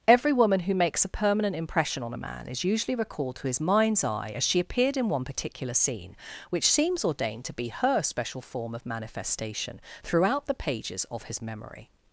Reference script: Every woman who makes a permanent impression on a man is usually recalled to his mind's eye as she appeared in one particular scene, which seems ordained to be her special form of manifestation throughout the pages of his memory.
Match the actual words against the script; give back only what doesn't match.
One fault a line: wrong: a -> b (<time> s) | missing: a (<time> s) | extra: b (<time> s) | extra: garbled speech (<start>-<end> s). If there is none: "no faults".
no faults